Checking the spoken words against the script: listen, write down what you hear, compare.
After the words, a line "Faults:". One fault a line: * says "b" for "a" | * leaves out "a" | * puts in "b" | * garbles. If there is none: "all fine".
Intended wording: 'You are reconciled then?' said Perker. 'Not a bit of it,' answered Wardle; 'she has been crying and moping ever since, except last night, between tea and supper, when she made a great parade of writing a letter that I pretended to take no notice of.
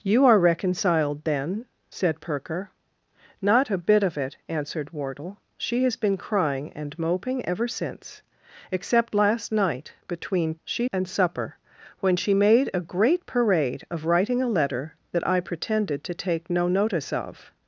'You are reconciled then?' said Perker. 'Not a bit of it,' answered Wardle; 'she has been crying and moping ever since, except last night, between she and supper, when she made a great parade of writing a letter that I pretended to take no notice of.
Faults:
* says "she" for "tea"